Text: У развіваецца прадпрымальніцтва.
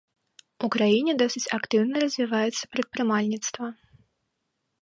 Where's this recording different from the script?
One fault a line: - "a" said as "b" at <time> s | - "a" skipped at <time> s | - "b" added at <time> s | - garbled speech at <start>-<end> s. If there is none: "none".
- "краіне досыць актыўна" added at 0.8 s